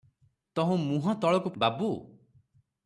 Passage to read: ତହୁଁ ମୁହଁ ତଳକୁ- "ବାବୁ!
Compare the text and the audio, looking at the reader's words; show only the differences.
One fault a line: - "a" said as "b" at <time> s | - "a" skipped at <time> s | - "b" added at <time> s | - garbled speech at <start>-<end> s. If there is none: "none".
none